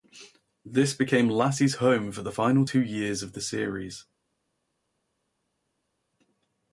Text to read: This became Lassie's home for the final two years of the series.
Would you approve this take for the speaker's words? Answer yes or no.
yes